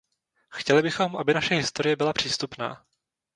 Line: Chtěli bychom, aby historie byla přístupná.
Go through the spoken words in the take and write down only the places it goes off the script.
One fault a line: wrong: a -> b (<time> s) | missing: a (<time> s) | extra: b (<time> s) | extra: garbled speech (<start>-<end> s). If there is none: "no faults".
extra: naše (1.3 s)